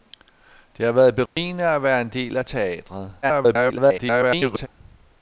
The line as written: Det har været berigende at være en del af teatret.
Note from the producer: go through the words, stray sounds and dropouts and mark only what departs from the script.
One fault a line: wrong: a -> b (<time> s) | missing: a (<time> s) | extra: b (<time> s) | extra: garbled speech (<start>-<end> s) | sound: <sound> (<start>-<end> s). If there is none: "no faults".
sound: dropout (1.3-1.4 s)
extra: garbled speech (3.2-4.7 s)